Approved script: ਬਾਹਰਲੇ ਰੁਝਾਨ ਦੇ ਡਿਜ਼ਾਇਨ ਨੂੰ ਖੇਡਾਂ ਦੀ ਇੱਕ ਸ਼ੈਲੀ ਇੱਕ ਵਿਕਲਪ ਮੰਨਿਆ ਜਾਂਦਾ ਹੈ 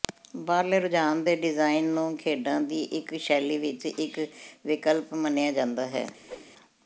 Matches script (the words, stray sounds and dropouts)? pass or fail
fail